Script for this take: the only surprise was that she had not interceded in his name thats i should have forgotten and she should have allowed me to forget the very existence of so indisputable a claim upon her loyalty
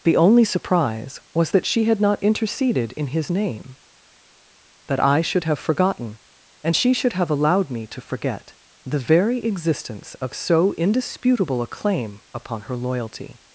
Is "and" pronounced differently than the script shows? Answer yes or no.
no